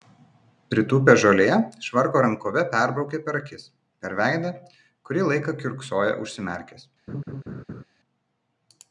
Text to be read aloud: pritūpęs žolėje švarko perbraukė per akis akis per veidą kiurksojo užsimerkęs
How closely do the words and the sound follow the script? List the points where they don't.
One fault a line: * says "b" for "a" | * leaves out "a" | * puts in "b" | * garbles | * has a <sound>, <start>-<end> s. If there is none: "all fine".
* puts in "rankove"
* leaves out "akis"
* puts in "kurį laiką"
* has a laugh, 7.1-7.8 s